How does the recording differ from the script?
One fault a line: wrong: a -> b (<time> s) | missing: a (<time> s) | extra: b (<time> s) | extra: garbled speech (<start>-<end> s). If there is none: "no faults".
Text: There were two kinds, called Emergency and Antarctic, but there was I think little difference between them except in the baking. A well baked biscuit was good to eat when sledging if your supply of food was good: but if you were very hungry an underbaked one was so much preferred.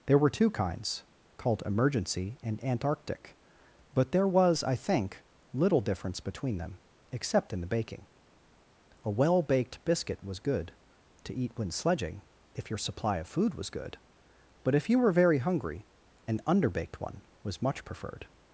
missing: so (17.6 s)